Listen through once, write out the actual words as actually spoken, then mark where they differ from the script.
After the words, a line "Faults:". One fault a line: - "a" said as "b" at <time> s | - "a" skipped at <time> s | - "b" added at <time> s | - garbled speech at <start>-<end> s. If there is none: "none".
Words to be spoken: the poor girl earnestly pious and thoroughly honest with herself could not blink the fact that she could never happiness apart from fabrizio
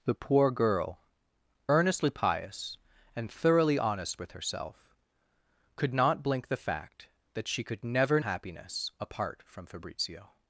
the poor girl earnestly pious and thoroughly honest with herself could not blink the fact that she could never happiness apart from fabrizio
Faults:
none